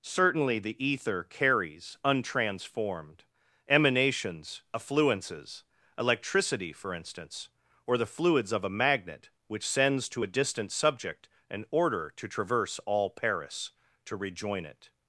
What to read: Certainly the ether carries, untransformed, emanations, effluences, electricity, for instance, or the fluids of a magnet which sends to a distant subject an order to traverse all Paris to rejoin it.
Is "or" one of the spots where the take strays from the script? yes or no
no